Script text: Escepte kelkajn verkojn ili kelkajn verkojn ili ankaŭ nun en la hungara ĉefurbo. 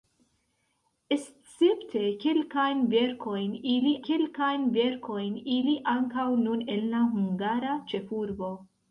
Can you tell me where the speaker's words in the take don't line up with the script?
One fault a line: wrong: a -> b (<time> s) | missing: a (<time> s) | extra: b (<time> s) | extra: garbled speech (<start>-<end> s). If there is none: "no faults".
no faults